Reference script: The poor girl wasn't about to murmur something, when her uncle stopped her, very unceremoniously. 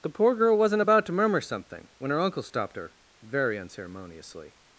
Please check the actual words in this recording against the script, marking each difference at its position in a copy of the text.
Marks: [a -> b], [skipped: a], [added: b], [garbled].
The poor girl wasn't about to murmur something, when her uncle stopped her, very unceremoniously.